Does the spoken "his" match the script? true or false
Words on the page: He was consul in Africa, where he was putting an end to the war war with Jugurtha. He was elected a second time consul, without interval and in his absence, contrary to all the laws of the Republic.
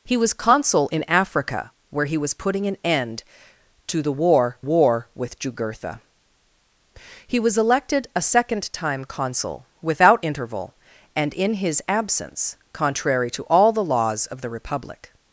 true